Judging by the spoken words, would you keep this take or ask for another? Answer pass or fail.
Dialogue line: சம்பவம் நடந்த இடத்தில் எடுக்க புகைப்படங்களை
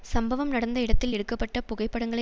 fail